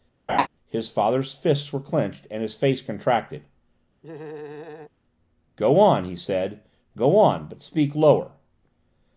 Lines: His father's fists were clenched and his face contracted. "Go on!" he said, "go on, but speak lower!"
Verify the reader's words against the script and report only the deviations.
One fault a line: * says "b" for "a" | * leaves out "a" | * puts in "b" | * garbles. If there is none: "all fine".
all fine